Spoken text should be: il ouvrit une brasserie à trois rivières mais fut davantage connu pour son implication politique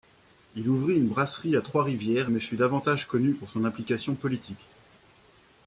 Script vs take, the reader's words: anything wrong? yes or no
no